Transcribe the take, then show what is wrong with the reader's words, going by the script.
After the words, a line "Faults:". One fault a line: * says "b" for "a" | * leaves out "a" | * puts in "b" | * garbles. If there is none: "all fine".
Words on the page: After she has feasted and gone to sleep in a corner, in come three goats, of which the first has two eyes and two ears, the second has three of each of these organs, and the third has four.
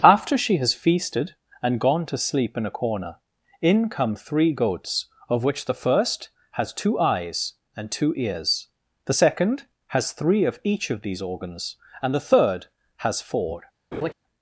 After she has feasted and gone to sleep in a corner, in come three goats, of which the first has two eyes and two ears, the second has three of each of these organs, and the third has four.
Faults:
all fine